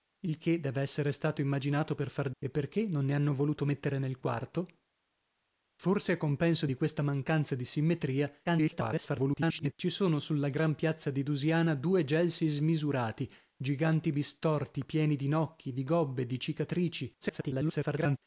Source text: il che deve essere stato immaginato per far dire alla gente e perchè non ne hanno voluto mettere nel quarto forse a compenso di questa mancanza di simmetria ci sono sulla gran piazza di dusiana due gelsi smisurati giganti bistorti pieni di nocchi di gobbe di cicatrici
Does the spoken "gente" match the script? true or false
false